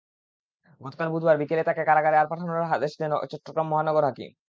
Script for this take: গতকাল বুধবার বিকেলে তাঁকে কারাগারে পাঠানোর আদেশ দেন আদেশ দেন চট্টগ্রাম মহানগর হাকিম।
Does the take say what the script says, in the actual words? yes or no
no